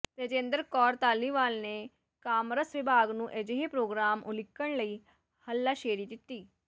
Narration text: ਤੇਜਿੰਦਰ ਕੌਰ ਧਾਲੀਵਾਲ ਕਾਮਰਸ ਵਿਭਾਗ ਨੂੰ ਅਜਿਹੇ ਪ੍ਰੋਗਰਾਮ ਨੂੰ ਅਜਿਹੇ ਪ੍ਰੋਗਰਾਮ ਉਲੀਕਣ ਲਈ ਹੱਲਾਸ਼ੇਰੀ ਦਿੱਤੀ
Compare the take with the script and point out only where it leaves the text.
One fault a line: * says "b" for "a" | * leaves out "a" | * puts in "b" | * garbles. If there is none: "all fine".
* puts in "ਨੇ"
* leaves out "ਨੂੰ ਅਜਿਹੇ ਪ੍ਰੋਗਰਾਮ"